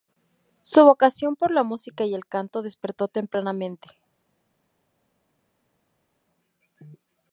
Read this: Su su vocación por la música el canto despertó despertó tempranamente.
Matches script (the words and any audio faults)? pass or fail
fail